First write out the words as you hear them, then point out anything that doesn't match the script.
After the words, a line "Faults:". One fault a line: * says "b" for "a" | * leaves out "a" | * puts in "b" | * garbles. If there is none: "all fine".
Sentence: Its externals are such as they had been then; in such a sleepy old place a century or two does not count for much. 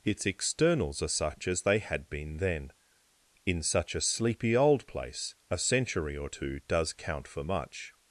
Its externals are such as they had been then; in such a sleepy old place a century or two does count for much.
Faults:
* leaves out "not"